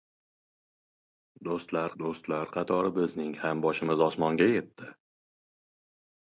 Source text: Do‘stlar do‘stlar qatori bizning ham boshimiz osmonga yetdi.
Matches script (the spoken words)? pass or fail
pass